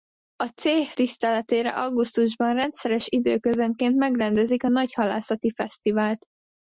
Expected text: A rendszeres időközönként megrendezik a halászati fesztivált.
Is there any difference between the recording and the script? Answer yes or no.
yes